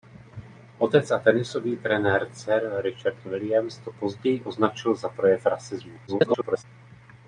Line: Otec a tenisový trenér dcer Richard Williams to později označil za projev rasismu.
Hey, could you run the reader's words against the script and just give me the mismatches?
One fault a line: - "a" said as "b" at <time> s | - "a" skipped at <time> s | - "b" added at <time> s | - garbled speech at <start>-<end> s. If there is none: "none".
- garbled speech at 6.1-6.6 s